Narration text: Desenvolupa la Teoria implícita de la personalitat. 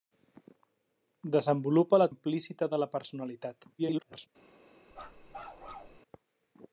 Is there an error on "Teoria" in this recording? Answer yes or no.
yes